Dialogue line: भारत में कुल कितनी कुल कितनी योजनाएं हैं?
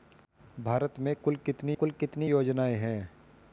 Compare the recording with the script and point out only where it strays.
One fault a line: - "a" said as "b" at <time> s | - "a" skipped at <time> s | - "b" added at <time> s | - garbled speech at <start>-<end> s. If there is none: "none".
none